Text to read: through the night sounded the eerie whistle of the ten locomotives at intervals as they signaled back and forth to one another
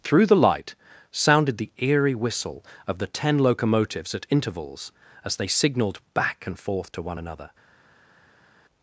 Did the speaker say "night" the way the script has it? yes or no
no